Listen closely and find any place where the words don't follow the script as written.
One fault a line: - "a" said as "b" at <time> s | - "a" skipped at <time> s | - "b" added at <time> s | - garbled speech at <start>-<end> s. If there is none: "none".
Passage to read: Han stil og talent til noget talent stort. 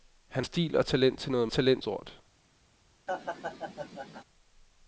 none